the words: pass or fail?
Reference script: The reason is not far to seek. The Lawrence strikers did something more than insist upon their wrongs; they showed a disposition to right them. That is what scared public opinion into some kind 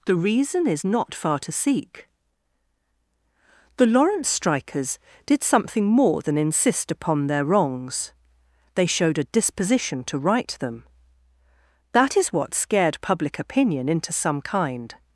pass